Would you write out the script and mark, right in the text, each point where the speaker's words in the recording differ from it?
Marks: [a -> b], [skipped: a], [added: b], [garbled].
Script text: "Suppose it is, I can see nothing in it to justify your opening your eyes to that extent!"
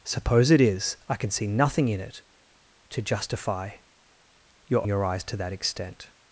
"Suppose it is, I can see nothing in it to justify your [skipped: opening] your eyes to that extent!"